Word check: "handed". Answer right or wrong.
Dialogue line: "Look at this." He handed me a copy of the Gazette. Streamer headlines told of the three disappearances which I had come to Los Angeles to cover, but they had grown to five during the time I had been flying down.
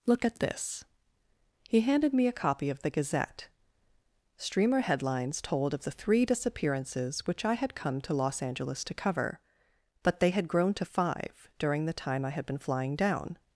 right